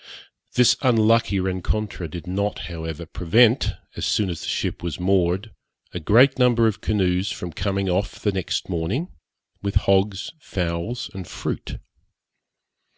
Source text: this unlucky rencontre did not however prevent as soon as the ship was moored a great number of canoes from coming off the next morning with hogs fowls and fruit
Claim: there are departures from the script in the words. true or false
false